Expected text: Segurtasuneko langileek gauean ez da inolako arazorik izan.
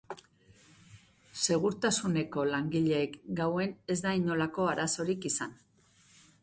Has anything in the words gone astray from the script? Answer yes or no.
no